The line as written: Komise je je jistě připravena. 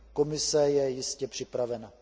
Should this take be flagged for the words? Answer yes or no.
yes